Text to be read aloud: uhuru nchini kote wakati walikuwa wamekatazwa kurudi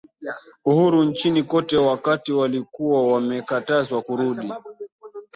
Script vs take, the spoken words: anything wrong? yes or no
no